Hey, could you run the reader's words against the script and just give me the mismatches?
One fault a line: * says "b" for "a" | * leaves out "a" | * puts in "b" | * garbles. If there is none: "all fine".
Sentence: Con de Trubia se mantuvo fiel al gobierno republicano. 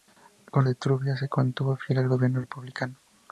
all fine